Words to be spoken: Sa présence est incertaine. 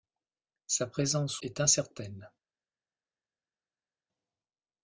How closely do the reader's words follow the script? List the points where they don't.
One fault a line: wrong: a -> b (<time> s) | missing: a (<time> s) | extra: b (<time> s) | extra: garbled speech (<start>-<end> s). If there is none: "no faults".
no faults